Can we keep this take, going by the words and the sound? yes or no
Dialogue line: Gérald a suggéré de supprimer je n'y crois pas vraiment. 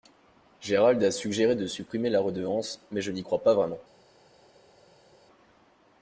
no